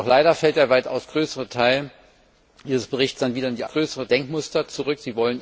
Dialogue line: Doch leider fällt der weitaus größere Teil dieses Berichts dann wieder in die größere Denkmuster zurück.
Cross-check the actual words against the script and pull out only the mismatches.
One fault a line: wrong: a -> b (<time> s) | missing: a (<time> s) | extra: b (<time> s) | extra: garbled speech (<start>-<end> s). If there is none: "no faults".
no faults